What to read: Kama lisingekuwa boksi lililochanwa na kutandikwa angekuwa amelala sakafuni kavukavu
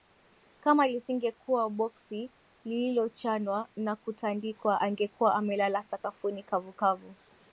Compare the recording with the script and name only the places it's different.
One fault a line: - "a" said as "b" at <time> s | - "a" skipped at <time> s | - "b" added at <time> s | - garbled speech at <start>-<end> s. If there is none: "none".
none